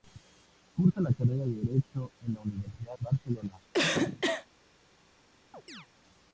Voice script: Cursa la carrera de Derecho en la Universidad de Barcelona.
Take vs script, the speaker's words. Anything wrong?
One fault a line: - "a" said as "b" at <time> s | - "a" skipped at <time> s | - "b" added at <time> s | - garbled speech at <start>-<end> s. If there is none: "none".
- "de" skipped at 3.0 s